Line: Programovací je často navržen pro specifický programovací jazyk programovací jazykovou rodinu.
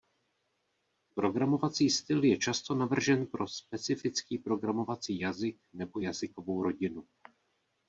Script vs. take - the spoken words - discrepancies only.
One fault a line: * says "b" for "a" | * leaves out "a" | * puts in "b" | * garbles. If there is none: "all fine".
* puts in "styl"
* says "nebo" for "programovací"